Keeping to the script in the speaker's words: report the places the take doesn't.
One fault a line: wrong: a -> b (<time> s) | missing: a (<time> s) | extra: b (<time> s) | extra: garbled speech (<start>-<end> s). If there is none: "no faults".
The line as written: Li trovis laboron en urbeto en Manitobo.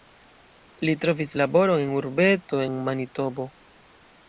no faults